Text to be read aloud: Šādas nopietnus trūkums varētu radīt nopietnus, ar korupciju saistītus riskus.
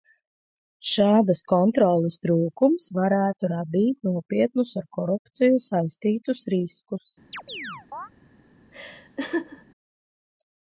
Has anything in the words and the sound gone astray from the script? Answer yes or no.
yes